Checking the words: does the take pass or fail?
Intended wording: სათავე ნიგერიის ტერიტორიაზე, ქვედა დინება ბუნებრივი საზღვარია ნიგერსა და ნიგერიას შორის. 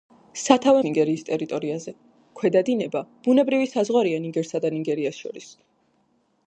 pass